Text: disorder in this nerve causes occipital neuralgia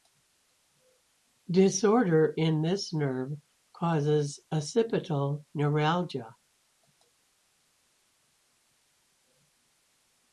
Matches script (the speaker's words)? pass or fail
pass